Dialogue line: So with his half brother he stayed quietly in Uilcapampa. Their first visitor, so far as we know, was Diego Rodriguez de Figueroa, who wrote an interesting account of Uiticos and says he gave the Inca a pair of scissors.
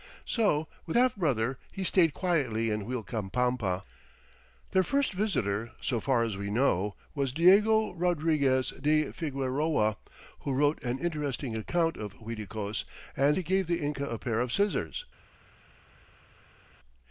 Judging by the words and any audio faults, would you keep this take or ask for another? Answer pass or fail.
fail